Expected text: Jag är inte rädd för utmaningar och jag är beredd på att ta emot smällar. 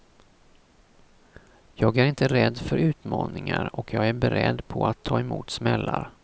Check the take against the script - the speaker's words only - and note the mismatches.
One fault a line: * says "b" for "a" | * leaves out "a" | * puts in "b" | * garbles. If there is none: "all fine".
all fine